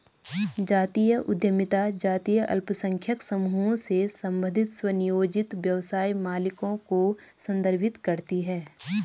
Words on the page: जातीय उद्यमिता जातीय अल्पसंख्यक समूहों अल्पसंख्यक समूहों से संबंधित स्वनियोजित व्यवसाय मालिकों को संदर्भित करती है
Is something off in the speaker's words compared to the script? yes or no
yes